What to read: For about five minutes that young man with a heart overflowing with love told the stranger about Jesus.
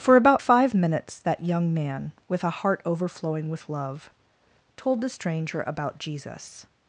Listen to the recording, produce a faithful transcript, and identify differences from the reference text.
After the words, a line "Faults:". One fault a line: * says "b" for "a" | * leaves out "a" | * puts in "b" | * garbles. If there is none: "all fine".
For about five minutes that young man with a heart overflowing with love told the stranger about Jesus.
Faults:
all fine